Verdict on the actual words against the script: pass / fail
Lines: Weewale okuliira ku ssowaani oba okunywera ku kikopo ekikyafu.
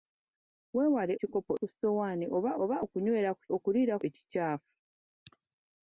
fail